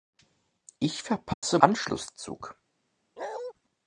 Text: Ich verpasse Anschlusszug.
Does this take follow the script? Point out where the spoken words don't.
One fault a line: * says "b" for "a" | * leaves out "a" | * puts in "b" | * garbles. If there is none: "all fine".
all fine